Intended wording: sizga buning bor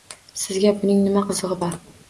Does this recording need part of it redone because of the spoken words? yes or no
yes